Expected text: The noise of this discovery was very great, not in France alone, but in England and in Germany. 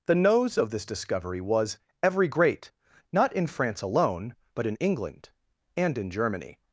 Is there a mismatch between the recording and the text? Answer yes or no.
yes